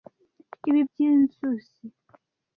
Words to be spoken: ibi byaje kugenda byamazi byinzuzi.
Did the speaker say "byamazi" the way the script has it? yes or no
no